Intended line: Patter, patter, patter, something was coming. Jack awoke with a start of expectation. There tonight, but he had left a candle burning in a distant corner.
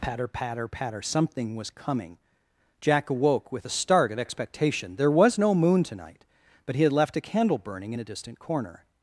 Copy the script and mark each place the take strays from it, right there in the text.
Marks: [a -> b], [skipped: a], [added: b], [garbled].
Patter, patter, patter, something was coming. Jack awoke with a start of expectation. There [added: was no moon] tonight, but he had left a candle burning in a distant corner.